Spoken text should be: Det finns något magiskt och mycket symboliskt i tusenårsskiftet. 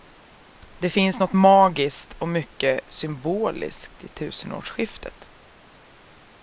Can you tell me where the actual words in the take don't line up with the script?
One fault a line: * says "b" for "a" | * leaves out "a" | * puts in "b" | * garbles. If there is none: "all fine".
all fine